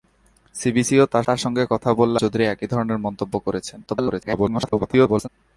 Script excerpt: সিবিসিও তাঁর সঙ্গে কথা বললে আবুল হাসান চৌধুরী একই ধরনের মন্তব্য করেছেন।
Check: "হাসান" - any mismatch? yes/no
yes